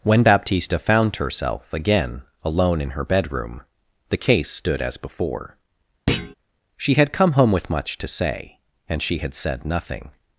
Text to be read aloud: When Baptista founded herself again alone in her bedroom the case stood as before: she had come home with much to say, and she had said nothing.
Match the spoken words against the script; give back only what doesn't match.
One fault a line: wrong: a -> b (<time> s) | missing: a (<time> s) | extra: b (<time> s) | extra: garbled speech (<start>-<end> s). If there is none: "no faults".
wrong: founded -> found (0.8 s)